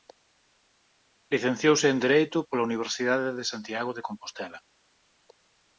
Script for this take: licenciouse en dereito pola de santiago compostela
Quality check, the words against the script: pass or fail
fail